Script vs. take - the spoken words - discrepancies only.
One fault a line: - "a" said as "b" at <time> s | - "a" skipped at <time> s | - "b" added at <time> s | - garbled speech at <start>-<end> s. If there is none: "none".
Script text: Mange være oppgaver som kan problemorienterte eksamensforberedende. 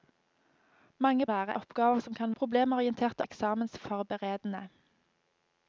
none